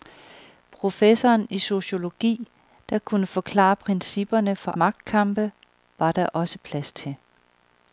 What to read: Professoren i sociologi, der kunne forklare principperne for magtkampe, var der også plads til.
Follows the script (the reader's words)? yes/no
yes